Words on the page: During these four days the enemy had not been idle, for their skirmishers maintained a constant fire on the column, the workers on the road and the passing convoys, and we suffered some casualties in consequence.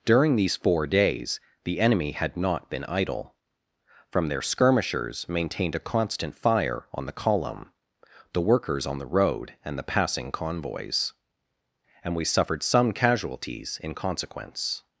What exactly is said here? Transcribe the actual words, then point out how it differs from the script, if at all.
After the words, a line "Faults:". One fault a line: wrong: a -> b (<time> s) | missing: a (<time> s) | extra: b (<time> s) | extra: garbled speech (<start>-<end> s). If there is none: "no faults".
During these four days the enemy had not been idle, from their skirmishers maintained a constant fire on the column, the workers on the road and the passing convoys, and we suffered some casualties in consequence.
Faults:
wrong: for -> from (4.1 s)